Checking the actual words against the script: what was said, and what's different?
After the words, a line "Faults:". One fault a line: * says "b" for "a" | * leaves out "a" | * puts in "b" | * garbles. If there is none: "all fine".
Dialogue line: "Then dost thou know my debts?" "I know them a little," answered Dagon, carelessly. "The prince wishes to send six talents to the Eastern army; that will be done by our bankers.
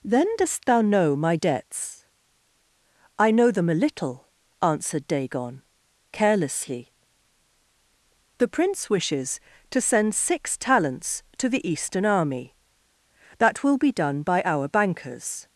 "Then dost thou know my debts?" "I know them a little," answered Dagon, carelessly. "The prince wishes to send six talents to the Eastern army; that will be done by our bankers.
Faults:
all fine